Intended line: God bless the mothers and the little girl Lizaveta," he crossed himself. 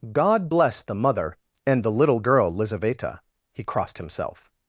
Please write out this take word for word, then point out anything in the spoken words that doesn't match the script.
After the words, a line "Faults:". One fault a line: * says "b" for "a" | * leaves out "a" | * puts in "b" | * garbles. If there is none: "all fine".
God bless the mother and the little girl Lizaveta," he crossed himself.
Faults:
* says "mother" for "mothers"